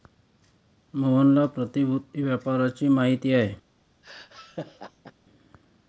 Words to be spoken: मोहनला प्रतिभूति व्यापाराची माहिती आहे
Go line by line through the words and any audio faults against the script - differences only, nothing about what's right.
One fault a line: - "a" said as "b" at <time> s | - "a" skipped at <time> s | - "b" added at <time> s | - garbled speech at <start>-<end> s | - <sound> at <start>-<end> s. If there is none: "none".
- laugh at 4.0-5.1 s